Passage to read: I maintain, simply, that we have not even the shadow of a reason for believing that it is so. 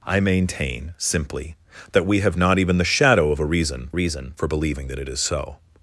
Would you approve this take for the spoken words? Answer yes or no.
no